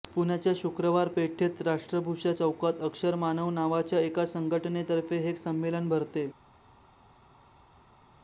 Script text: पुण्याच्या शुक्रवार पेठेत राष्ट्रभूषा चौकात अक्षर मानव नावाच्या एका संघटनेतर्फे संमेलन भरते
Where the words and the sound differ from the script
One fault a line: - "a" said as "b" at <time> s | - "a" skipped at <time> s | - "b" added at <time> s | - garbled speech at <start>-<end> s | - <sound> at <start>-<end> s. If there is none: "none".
- "हे" added at 5.2 s